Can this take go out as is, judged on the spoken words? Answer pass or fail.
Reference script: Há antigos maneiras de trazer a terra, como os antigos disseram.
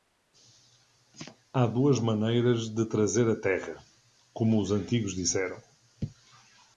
fail